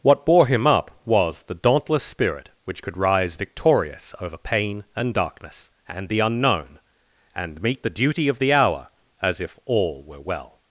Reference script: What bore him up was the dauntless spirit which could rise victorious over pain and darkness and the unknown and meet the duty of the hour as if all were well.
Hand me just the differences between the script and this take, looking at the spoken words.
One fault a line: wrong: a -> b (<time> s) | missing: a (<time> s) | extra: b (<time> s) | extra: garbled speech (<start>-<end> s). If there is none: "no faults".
no faults